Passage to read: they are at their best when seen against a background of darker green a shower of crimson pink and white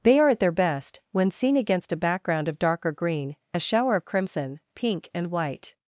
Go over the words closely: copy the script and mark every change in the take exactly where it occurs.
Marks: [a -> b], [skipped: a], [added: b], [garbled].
they are at their best when seen against a background of darker green a shower of crimson pink and white